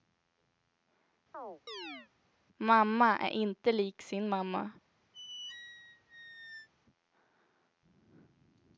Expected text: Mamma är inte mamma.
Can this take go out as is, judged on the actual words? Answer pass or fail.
fail